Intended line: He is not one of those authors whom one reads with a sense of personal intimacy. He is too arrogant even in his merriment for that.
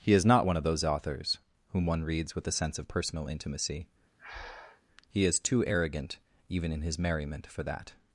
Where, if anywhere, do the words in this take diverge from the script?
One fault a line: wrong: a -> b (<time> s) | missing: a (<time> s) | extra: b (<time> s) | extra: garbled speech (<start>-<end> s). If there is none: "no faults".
no faults